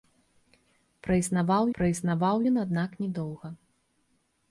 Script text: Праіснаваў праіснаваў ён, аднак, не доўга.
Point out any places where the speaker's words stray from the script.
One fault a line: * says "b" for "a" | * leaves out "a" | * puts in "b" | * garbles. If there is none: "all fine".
all fine